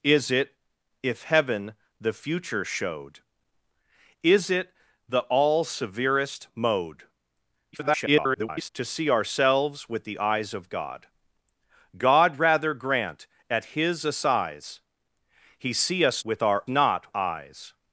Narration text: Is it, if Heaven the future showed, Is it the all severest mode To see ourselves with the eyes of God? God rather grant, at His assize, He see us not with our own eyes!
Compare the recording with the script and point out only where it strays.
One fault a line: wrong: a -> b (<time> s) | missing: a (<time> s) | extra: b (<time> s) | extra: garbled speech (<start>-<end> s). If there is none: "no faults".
extra: garbled speech (7.7-8.7 s)
missing: not (16.2 s)
wrong: own -> not (16.7 s)